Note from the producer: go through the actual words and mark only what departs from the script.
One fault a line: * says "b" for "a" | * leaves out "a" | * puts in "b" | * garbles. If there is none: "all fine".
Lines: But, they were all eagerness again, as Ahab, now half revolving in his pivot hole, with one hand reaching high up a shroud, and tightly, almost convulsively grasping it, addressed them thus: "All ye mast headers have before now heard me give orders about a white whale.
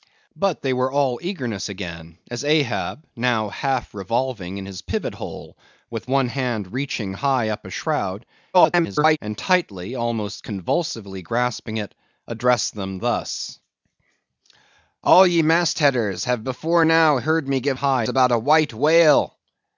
* garbles
* says "high" for "orders"